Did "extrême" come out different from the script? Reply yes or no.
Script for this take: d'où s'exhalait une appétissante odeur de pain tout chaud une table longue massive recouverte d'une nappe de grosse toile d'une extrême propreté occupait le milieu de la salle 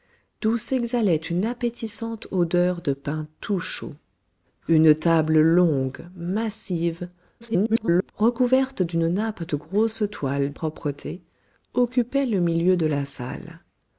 yes